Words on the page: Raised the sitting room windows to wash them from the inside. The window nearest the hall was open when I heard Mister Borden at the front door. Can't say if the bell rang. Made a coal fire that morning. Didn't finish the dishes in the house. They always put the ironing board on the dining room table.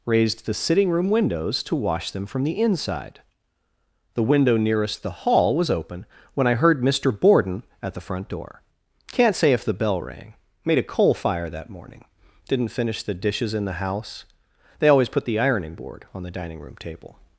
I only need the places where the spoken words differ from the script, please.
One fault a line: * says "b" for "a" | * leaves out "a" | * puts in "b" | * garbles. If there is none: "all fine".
all fine